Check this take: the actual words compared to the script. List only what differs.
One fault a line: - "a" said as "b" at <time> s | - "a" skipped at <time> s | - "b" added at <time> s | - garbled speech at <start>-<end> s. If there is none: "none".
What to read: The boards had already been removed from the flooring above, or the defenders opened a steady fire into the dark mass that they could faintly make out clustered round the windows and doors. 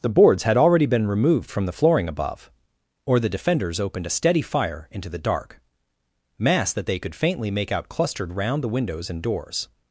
none